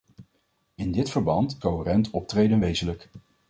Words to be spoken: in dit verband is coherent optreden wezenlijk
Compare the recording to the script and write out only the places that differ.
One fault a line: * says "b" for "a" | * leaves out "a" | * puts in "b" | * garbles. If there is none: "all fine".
* leaves out "is"